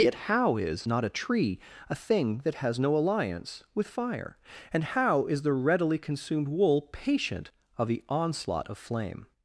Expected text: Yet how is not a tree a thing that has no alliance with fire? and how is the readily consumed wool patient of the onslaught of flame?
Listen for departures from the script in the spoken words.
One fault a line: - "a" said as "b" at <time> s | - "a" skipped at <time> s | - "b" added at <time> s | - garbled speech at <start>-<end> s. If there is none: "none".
none